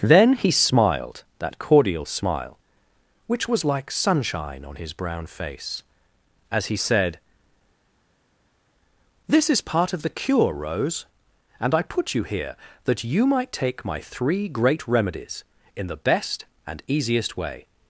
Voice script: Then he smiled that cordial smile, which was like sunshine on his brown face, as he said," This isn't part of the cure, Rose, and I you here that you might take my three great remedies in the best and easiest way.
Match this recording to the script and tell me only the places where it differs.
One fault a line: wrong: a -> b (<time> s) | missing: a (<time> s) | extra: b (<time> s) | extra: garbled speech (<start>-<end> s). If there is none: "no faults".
wrong: isn't -> is (9.5 s)
extra: put (11.8 s)